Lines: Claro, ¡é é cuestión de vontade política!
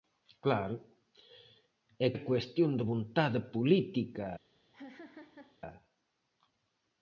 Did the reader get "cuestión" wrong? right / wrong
right